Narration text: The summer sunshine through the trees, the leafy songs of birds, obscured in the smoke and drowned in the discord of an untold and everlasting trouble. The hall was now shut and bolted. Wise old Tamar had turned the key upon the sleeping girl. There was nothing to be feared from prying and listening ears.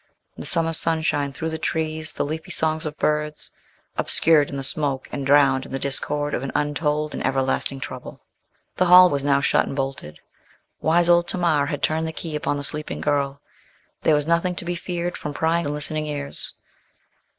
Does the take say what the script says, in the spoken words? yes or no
yes